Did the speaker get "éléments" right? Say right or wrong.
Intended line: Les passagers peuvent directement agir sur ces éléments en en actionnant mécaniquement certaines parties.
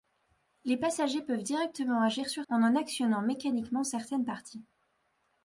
wrong